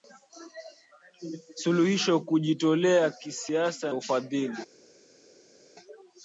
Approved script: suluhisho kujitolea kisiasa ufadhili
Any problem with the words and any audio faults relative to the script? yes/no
no